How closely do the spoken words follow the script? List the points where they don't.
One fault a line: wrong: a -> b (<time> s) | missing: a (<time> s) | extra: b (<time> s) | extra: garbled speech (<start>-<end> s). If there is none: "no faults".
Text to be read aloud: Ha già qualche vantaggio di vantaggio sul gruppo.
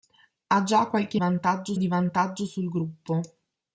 no faults